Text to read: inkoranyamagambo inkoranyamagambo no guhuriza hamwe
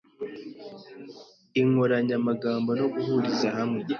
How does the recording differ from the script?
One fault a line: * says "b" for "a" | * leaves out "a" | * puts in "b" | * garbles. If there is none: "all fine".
* leaves out "inkoranyamagambo"